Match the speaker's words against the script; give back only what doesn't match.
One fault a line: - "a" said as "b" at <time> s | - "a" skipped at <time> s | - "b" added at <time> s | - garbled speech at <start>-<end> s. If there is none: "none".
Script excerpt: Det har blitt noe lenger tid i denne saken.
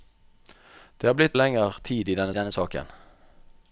- "noe" skipped at 1.4 s
- "denne" added at 2.4 s